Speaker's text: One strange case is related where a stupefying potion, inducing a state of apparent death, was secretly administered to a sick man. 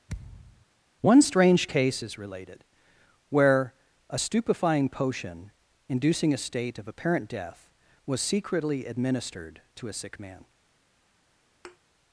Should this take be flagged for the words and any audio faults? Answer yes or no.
yes